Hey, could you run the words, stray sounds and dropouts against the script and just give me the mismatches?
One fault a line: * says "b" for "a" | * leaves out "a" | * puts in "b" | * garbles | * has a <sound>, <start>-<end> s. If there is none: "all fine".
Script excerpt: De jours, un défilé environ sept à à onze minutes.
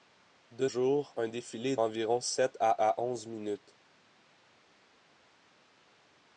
all fine